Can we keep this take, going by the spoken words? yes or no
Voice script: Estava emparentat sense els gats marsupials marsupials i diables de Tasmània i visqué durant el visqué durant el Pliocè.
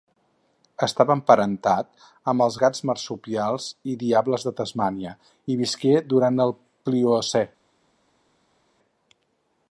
no